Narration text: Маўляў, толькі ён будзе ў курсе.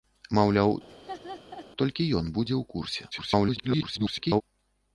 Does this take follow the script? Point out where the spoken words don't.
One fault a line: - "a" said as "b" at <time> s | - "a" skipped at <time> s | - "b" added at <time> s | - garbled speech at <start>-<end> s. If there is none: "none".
- garbled speech at 3.1-4.4 s